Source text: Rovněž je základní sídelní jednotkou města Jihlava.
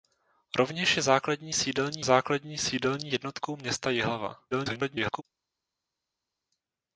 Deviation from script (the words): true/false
true